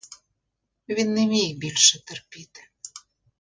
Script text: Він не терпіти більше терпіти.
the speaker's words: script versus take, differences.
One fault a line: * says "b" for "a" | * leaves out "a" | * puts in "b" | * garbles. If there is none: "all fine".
* says "міг" for "терпіти"